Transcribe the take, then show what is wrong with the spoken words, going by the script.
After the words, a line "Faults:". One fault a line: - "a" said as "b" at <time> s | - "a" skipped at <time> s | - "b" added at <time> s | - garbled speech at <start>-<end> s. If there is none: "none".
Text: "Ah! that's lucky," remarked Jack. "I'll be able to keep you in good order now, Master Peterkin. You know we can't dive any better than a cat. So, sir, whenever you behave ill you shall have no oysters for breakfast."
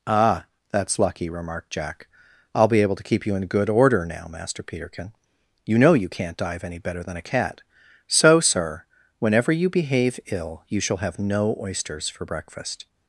"Ah! that's lucky," remarked Jack. "I'll be able to keep you in good order now, Master Peterkin. You know you can't dive any better than a cat. So, sir, whenever you behave ill you shall have no oysters for breakfast."
Faults:
- "we" said as "you" at 5.9 s